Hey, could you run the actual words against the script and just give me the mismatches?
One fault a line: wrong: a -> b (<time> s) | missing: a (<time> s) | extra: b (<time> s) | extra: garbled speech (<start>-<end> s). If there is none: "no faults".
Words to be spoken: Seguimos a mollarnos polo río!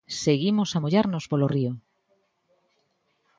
no faults